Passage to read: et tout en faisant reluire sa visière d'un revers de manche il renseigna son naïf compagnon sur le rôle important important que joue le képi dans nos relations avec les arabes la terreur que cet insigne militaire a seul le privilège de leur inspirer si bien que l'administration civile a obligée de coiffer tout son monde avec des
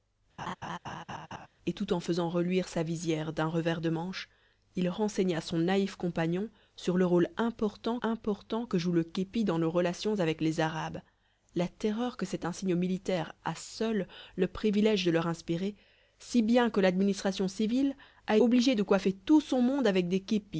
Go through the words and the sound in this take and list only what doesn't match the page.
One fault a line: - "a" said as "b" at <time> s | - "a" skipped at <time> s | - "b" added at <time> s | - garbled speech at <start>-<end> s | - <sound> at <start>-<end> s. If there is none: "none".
- laugh at 0.4-1.5 s